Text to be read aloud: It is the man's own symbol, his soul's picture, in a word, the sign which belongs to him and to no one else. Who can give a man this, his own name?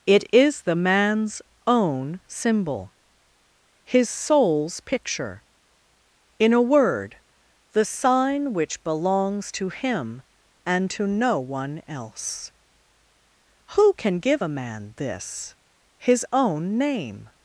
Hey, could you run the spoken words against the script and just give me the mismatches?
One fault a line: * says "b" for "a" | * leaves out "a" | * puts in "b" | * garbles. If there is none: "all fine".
all fine